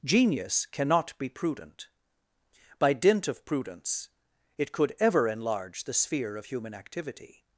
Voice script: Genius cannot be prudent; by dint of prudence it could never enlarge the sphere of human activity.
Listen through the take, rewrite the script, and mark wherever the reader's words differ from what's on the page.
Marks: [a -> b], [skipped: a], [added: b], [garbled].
Genius cannot be prudent; by dint of prudence it could [never -> ever] enlarge the sphere of human activity.